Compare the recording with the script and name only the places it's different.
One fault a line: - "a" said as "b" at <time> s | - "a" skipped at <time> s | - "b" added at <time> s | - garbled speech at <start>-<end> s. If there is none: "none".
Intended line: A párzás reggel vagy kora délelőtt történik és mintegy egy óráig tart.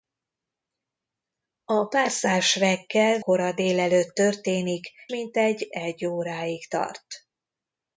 - "vagy" skipped at 3.2 s
- "és" skipped at 4.9 s